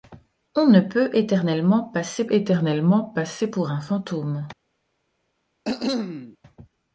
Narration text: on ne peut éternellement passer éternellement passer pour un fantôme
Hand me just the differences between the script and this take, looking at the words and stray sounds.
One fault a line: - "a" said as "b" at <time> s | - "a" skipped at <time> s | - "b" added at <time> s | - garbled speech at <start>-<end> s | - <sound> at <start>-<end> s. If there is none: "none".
- cough at 5.6-6.4 s